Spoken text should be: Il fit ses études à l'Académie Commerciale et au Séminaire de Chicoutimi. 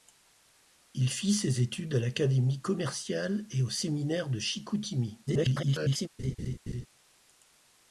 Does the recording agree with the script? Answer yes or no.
no